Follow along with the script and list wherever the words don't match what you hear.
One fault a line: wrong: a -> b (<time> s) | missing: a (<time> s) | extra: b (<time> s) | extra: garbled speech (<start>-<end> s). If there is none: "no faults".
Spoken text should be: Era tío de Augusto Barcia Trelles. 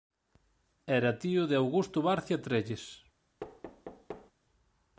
no faults